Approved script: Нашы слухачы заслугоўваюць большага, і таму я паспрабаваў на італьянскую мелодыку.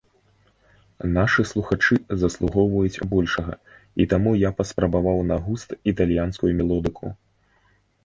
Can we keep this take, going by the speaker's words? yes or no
no